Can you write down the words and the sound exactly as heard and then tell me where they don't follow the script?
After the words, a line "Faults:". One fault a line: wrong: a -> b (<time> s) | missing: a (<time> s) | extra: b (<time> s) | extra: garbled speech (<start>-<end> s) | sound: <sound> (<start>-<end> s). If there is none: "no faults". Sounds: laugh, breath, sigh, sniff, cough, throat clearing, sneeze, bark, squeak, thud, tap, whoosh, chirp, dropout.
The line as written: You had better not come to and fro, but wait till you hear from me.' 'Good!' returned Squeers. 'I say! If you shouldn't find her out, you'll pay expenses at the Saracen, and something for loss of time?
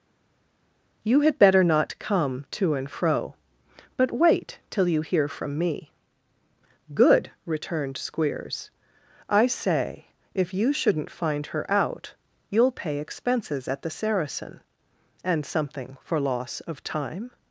You had better not come to and fro, but wait till you hear from me.' 'Good!' returned Squeers. 'I say! If you shouldn't find her out, you'll pay expenses at the Saracen, and something for loss of time?
Faults:
no faults